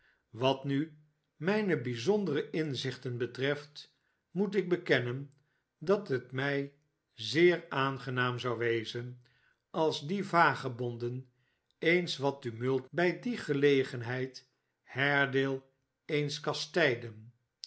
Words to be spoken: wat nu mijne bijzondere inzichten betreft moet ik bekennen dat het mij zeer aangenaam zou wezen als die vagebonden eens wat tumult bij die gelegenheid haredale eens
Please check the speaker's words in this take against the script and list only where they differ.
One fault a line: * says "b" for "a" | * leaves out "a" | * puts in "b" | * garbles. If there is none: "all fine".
all fine